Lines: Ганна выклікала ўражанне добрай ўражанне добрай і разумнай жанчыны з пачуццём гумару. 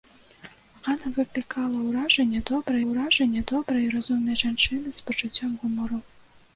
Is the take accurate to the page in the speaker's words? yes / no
yes